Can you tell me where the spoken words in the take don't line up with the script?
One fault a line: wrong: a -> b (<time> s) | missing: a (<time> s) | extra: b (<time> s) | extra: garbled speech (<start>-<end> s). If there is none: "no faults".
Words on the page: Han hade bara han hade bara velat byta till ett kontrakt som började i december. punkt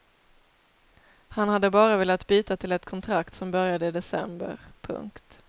missing: han hade bara (2.0 s)